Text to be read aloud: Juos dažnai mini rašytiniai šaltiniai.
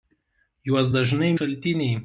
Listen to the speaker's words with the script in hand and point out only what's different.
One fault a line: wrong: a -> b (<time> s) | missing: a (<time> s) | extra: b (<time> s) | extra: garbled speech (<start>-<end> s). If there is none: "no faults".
missing: mini rašytiniai (1.3 s)